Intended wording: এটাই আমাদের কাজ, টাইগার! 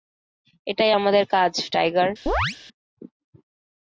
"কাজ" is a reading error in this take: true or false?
false